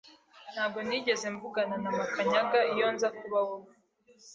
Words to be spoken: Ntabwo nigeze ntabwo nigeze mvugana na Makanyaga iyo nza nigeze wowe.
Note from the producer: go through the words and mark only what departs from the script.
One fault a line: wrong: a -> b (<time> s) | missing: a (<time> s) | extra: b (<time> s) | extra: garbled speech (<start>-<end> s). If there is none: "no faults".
missing: ntabwo nigeze (1.2 s)
wrong: nigeze -> kuba (3.2 s)